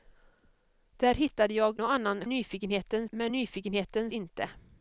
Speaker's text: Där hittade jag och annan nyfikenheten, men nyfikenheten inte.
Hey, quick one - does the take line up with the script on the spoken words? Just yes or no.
yes